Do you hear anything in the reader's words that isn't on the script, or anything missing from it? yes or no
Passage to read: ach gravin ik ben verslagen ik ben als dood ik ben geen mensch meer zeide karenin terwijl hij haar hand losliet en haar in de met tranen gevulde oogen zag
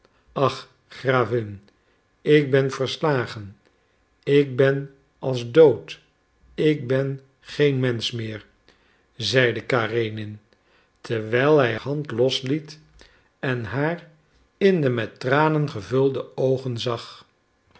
yes